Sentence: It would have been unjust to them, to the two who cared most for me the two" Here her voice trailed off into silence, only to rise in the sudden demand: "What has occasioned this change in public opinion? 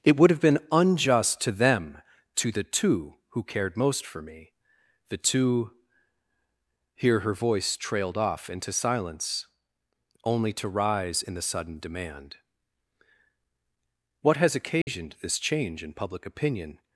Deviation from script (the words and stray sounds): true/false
true